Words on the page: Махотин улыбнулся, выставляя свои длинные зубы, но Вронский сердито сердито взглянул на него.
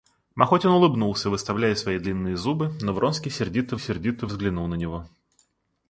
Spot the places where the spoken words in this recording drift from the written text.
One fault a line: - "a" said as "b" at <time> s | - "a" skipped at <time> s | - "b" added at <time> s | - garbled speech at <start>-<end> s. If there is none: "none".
none